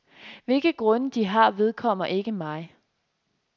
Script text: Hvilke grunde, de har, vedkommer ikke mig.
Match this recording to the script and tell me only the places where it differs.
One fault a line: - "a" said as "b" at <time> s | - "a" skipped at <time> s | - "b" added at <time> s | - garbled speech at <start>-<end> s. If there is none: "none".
none